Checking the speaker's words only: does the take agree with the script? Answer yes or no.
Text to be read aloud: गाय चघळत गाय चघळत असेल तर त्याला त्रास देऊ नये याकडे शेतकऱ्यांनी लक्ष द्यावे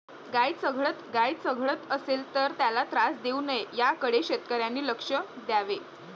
yes